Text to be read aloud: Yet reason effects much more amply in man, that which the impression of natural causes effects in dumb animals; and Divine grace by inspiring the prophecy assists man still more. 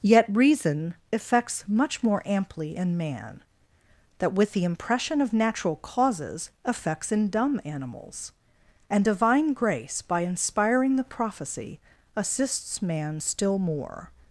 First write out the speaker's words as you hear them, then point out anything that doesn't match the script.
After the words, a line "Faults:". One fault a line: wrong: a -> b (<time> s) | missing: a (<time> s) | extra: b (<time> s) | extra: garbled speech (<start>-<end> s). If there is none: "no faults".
Yet reason effects much more amply in man, that with the impression of natural causes effects in dumb animals; and Divine grace by inspiring the prophecy assists man still more.
Faults:
wrong: which -> with (4.3 s)